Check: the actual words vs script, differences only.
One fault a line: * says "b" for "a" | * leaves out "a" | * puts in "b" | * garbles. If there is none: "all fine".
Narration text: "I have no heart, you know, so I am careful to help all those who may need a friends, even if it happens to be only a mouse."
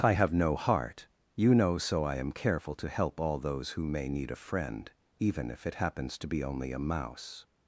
* says "friend" for "friends"